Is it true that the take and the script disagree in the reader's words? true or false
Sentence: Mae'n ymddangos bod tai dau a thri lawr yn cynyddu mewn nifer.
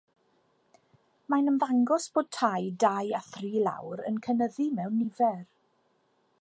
false